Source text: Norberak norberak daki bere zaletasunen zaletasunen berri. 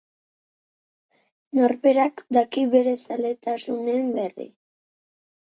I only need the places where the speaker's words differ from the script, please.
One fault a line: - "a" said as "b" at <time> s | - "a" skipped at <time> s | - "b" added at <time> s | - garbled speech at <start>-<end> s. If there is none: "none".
- "norberak" skipped at 2.2 s
- "zaletasunen" skipped at 4.1 s